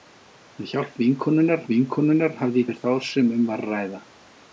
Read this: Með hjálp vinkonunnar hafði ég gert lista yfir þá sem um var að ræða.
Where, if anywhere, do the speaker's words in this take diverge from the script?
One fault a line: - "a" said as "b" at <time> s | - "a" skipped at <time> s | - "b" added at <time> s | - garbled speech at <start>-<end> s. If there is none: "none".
- "vinkonunnar" added at 1.7 s
- "gert lista" skipped at 2.7 s